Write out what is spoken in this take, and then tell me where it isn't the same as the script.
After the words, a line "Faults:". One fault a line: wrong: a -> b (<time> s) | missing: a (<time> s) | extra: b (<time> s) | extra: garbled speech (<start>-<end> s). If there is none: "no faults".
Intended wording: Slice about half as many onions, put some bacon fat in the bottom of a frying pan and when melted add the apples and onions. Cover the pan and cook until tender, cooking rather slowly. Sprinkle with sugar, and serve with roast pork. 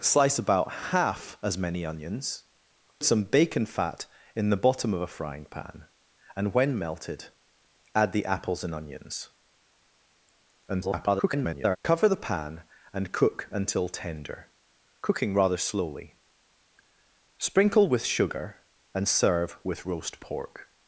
Slice about half as many onions, some bacon fat in the bottom of a frying pan and when melted add the apples and onions. [garbled] Cover the pan and cook until tender, cooking rather slowly. Sprinkle with sugar, and serve with roast pork.
Faults:
missing: put (2.5 s)
extra: garbled speech (10.7-11.8 s)